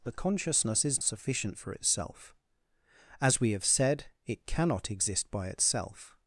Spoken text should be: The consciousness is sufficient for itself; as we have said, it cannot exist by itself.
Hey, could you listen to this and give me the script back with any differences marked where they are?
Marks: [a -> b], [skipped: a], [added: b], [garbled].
The consciousness is sufficient for itself; as we have said, it cannot exist by itself.